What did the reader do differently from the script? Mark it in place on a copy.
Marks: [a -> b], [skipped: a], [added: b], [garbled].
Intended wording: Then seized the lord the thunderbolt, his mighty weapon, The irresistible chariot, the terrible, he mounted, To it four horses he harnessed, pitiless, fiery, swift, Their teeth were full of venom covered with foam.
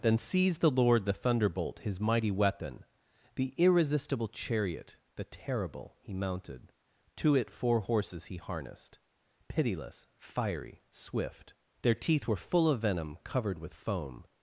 Then seized the lord the thunderbolt, his mighty weapon, The irresistible chariot, the terrible, he mounted, To it four horses he harnessed, pitiless, fiery, swift, Their teeth were full of venom covered with foam.